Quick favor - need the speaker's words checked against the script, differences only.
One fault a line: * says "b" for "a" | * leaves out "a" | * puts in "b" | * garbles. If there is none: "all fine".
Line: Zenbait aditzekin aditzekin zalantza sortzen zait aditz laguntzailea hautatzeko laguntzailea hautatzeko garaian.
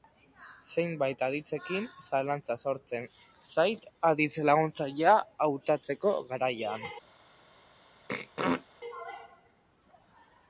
* leaves out "aditzekin"
* leaves out "laguntzailea hautatzeko"